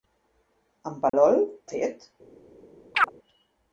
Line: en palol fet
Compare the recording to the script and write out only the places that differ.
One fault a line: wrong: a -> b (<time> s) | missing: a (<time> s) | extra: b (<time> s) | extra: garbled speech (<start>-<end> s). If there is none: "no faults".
no faults